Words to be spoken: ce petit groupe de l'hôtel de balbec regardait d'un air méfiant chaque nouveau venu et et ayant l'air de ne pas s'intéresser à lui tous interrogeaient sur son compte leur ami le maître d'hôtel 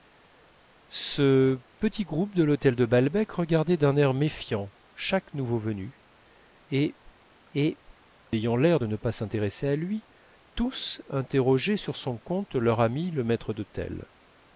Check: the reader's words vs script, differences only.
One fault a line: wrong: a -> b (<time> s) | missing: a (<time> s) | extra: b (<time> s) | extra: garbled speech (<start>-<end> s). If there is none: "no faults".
no faults